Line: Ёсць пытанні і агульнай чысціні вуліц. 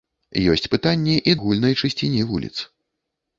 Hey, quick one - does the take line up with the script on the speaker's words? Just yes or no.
yes